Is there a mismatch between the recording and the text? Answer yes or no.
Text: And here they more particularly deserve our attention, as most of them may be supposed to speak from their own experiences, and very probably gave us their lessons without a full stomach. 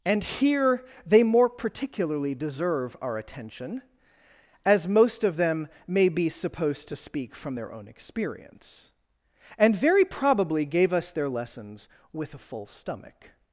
yes